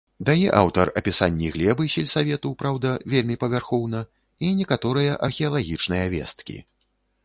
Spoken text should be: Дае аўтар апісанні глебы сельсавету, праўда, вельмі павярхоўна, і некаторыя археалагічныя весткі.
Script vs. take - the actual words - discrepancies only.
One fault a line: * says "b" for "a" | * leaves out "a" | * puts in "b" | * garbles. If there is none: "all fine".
all fine